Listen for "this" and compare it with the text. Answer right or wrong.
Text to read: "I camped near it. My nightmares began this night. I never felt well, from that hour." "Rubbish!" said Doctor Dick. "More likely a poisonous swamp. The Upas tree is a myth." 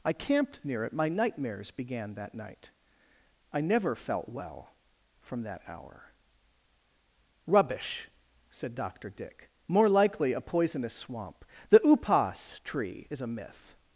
wrong